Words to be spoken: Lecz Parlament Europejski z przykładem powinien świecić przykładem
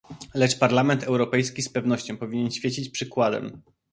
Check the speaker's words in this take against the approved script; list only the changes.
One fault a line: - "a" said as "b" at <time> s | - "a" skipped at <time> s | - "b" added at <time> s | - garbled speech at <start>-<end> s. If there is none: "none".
- "przykładem" said as "pewnością" at 1.7 s